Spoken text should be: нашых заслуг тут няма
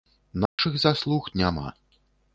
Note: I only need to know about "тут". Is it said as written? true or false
false